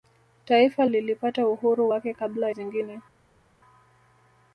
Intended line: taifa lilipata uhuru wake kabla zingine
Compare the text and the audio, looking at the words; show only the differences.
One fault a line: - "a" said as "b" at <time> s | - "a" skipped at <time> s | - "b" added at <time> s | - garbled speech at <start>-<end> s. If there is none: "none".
none